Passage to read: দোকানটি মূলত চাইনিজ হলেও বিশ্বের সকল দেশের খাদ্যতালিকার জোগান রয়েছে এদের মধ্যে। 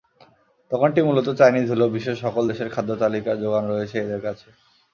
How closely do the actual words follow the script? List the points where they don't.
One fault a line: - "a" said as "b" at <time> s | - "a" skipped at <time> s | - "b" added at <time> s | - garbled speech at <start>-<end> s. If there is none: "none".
- "মধ্যে" said as "কাছে" at 4.3 s